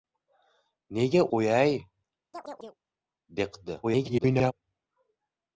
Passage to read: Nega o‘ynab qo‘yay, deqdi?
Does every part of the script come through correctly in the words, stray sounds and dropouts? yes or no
no